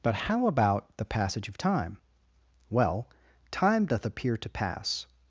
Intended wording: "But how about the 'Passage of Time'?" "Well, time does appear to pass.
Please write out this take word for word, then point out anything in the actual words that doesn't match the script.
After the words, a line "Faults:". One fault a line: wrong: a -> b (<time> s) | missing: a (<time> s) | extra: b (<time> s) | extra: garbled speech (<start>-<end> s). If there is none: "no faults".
"But how about the 'Passage of Time'?" "Well, time doth appear to pass.
Faults:
wrong: does -> doth (3.9 s)